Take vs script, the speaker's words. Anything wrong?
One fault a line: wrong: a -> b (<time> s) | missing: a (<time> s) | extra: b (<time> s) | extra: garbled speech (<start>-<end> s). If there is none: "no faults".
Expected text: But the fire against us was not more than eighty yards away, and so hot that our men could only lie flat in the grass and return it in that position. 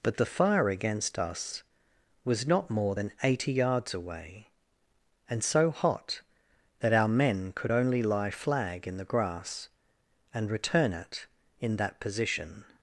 wrong: flat -> flag (8.3 s)